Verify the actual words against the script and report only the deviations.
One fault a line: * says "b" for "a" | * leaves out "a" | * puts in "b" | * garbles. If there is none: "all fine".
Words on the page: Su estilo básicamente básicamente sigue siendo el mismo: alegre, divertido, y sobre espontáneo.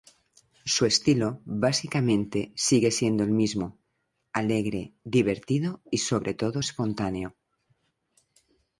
* leaves out "básicamente"
* puts in "todo"